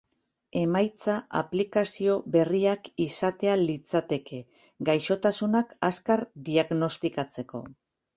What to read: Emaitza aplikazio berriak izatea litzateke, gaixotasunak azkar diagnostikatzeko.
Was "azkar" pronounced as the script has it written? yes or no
yes